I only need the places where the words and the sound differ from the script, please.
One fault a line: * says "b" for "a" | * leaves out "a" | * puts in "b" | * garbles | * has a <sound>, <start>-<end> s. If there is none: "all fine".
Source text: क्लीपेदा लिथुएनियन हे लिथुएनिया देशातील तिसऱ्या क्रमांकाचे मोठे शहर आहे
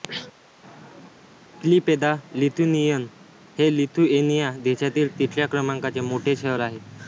all fine